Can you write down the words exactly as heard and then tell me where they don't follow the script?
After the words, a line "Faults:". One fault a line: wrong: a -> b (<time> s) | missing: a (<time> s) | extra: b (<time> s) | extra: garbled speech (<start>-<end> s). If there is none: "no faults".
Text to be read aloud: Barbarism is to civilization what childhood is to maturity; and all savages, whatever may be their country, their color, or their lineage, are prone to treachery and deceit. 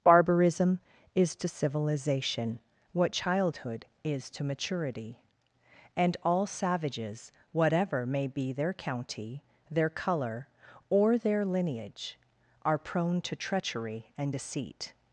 Barbarism is to civilization what childhood is to maturity; and all savages, whatever may be their county, their color, or their lineage, are prone to treachery and deceit.
Faults:
wrong: country -> county (8.7 s)